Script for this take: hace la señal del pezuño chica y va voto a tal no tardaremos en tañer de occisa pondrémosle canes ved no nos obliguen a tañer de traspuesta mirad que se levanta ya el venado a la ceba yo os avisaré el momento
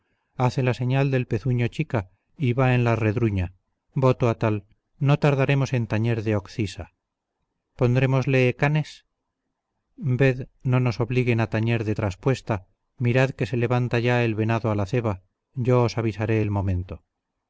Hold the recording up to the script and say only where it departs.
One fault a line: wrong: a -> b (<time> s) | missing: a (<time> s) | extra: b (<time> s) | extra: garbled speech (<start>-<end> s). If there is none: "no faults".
extra: en la redruña (2.7 s)